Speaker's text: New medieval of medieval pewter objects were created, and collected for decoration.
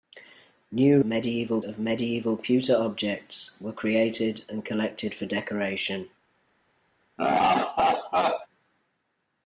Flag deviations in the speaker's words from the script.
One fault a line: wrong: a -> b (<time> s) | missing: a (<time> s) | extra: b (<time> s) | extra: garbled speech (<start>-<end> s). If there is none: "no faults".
no faults